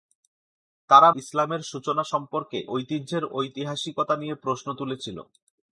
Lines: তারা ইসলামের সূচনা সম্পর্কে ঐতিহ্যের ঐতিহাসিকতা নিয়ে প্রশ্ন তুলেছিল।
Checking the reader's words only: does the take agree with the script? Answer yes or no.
yes